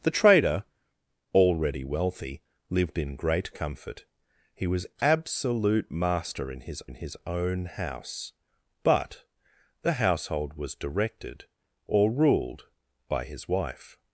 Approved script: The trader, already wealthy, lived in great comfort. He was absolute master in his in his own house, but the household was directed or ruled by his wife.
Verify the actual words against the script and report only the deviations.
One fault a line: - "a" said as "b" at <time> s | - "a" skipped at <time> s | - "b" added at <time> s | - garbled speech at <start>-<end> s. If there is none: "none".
none